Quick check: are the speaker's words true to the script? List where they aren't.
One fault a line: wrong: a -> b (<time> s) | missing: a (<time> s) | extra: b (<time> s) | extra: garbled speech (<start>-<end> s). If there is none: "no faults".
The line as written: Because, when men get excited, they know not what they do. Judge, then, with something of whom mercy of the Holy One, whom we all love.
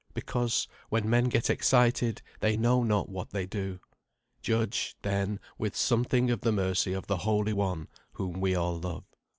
wrong: whom -> the (6.4 s)